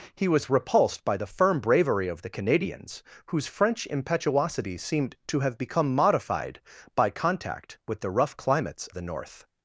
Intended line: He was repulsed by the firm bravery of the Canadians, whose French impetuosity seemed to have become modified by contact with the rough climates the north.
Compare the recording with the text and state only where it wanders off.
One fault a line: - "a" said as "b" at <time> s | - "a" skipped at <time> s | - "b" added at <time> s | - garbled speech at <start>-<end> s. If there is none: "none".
none